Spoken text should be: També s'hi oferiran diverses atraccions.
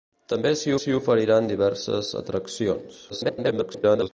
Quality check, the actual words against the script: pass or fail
fail